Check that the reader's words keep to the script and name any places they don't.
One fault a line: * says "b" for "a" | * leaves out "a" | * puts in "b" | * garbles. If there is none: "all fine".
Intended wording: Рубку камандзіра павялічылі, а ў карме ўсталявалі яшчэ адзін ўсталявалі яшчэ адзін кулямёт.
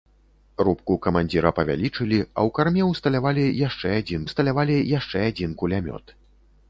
all fine